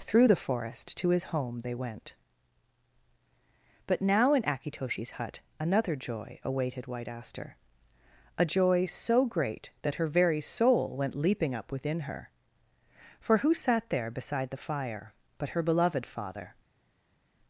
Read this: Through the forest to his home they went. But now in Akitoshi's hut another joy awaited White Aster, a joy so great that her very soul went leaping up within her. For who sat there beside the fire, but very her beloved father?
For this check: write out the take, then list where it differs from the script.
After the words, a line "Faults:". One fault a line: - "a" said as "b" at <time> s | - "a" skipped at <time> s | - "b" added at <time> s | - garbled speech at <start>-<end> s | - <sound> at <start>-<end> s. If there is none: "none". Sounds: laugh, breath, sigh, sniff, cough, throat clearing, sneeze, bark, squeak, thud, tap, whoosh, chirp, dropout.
Through the forest to his home they went. But now in Akitoshi's hut another joy awaited White Aster, a joy so great that her very soul went leaping up within her. For who sat there beside the fire, but her beloved father?
Faults:
- "very" skipped at 15.5 s